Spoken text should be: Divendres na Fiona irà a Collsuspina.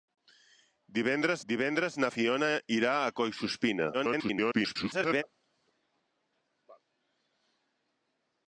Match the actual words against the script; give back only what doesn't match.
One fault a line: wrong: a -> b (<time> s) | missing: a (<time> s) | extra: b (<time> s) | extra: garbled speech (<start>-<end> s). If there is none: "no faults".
extra: divendres (1.5 s)
extra: garbled speech (3.9-5.2 s)